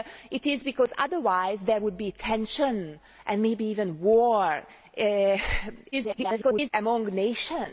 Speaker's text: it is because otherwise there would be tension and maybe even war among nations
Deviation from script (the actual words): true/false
true